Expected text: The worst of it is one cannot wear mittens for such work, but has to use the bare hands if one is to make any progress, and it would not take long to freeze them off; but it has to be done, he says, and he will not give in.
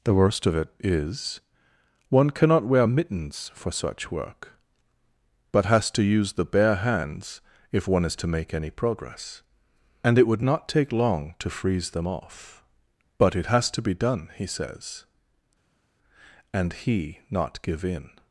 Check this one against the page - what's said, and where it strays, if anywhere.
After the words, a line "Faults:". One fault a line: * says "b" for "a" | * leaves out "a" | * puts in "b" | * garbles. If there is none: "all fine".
The worst of it is one cannot wear mittens for such work, but has to use the bare hands if one is to make any progress, and it would not take long to freeze them off; but it has to be done, he says, and he not give in.
Faults:
* leaves out "will"